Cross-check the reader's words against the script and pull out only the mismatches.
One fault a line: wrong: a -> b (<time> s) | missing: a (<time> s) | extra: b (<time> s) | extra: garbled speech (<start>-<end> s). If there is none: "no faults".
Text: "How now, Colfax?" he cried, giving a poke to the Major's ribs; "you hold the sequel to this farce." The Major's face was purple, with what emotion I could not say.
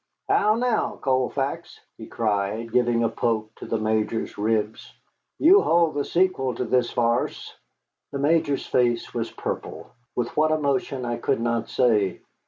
no faults